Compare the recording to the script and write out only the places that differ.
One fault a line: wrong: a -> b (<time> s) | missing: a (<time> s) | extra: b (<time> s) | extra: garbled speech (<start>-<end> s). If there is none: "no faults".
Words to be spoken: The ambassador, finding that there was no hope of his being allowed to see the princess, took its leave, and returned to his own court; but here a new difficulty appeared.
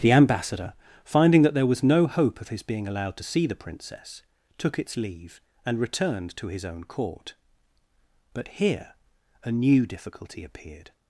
no faults